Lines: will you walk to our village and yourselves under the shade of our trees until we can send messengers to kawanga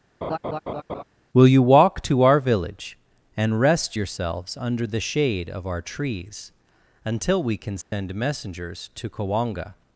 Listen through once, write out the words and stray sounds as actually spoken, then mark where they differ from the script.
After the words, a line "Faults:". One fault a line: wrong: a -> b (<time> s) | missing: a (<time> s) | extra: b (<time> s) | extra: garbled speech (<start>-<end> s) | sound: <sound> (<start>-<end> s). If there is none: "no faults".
will you walk to our village and rest yourselves under the shade of our trees until we can send messengers to kawanga
Faults:
sound: laugh (0.2-1.0 s)
extra: rest (3.6 s)
sound: dropout (7.8-7.9 s)